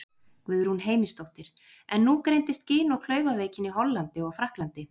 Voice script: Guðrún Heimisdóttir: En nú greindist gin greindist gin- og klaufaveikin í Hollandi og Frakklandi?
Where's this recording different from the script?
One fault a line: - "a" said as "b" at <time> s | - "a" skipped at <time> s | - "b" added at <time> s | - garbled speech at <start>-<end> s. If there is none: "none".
- "greindist gin" skipped at 3.0 s